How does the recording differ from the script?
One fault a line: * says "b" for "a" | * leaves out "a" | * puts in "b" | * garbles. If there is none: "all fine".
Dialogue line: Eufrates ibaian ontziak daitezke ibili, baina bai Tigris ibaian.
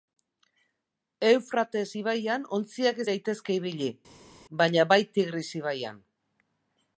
all fine